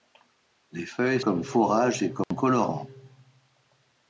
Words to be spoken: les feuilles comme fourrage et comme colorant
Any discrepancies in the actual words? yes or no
no